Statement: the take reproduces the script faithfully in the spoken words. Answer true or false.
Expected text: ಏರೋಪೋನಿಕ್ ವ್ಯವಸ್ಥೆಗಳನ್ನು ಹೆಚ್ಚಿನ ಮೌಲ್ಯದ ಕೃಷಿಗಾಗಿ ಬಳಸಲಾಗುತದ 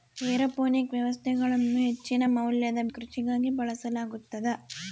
true